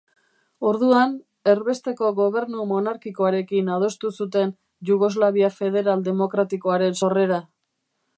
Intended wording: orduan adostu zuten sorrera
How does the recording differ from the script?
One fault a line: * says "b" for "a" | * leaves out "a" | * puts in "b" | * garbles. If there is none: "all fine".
* puts in "erbesteko gobernu monarkikoarekin"
* puts in "jugoslavia federal demokratikoaren"